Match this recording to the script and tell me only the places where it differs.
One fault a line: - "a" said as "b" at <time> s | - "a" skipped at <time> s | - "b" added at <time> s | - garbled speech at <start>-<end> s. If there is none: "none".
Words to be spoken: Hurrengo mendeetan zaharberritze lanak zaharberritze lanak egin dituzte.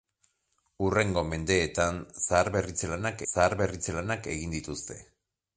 none